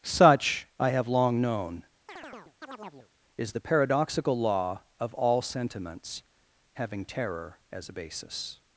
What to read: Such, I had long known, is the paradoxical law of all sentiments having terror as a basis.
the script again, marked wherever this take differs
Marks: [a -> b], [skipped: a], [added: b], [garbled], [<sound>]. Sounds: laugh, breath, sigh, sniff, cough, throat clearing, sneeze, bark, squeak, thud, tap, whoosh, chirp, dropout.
Such, I [had -> have] long known, [chirp] is the paradoxical law of all sentiments having terror as a basis.